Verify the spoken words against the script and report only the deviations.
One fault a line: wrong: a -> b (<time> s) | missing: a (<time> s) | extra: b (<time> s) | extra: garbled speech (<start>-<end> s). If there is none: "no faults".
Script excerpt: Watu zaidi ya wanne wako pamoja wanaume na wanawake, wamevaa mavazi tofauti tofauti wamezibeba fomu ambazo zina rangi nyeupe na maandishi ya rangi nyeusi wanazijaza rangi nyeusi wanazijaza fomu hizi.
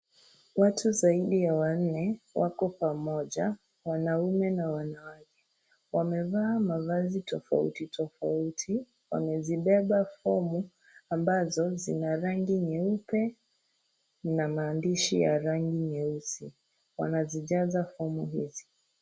missing: rangi nyeusi wanazijaza (17.8 s)